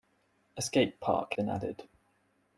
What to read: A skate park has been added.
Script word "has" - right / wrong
wrong